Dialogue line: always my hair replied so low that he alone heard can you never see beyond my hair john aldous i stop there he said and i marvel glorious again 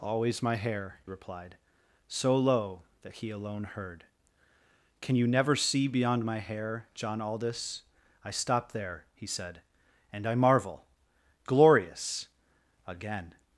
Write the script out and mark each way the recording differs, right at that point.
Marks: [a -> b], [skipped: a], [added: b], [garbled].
always my hair replied so low that he alone heard can you never see beyond my hair john aldous i stop there he said and i marvel glorious again